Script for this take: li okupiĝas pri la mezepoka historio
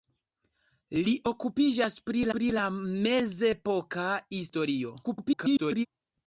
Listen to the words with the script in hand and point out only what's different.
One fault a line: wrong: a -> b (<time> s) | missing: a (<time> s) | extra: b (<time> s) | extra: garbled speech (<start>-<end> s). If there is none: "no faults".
extra: pri (2.4 s)
extra: garbled speech (5.0-5.9 s)